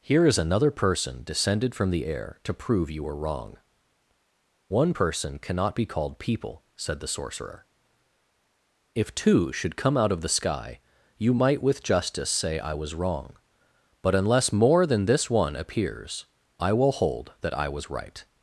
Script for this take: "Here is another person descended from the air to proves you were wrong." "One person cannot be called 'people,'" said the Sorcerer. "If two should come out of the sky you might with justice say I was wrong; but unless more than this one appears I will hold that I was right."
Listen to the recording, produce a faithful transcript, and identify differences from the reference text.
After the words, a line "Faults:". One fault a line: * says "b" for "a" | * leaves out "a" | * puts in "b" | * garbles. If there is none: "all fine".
"Here is another person descended from the air to prove you were wrong." "One person cannot be called 'people,'" said the Sorcerer. "If two should come out of the sky you might with justice say I was wrong; but unless more than this one appears I will hold that I was right."
Faults:
* says "prove" for "proves"